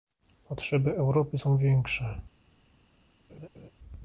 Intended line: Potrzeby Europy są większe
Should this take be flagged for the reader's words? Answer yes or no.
no